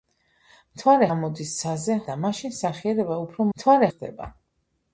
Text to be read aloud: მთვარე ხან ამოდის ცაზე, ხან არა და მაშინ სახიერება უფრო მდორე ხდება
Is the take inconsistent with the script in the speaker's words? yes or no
yes